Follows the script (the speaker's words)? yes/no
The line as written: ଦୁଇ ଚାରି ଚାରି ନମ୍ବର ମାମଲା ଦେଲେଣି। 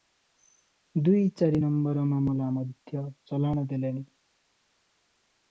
no